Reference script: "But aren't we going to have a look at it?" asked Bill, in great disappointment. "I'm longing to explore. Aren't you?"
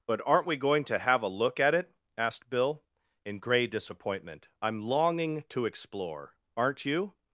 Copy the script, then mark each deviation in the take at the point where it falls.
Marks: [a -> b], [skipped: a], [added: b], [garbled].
"But aren't we going to have a look at it?" asked Bill, in [great -> grey] disappointment. "I'm longing to explore. Aren't you?"